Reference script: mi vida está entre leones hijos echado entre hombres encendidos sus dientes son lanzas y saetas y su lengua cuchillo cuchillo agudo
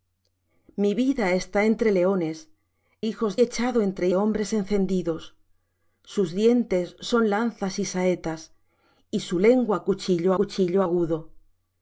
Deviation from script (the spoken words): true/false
false